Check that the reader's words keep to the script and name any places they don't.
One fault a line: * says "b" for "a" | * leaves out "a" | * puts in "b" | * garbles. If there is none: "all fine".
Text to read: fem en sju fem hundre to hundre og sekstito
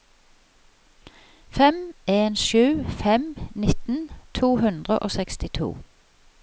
* says "nitten" for "hundre"